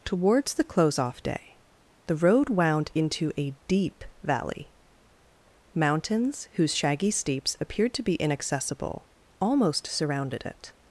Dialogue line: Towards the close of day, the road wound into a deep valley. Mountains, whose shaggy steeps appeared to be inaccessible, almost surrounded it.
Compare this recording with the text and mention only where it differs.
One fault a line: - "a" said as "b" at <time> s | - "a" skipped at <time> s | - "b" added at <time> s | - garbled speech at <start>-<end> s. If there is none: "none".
- "of" said as "off" at 1.0 s